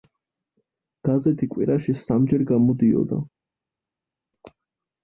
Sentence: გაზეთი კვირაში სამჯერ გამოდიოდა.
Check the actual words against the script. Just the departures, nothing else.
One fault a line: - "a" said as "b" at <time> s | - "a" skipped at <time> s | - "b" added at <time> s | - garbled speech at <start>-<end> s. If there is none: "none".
none